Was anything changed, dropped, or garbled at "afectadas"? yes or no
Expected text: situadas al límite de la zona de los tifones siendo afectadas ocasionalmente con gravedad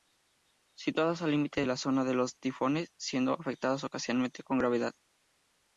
no